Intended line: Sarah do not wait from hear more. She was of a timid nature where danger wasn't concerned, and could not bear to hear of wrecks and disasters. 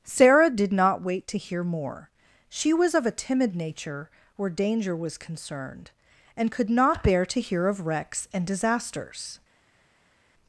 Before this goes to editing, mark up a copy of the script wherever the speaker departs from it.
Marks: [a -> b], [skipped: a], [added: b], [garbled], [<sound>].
Sarah [do -> did] not wait [from -> to] hear more. She was of a timid nature where danger [wasn't -> was] concerned, and could not bear to hear of wrecks and disasters.